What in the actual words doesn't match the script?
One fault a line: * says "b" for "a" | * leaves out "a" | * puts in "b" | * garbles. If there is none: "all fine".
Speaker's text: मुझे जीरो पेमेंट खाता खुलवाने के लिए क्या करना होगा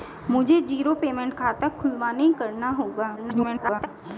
* leaves out "के लिए क्या"
* garbles